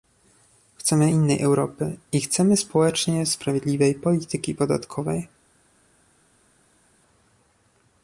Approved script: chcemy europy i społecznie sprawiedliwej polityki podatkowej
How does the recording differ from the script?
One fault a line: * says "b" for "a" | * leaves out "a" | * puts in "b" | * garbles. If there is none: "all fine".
* puts in "innej"
* puts in "chcemy"